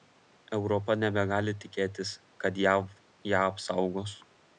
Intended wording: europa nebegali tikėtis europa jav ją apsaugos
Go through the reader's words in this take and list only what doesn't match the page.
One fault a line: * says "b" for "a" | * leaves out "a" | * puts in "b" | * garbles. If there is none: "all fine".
* says "kad" for "europa"